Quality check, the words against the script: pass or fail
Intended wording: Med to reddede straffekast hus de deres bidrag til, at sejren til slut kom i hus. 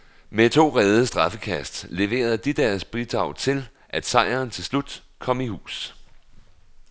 fail